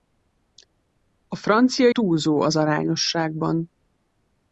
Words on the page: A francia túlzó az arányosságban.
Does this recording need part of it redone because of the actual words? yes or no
no